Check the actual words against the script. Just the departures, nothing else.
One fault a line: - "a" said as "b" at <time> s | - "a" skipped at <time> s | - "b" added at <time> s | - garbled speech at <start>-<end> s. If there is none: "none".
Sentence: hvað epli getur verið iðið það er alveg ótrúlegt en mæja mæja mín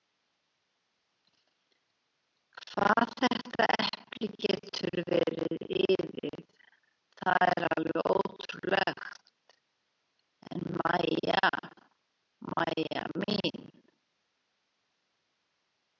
- "þetta" added at 3.2 s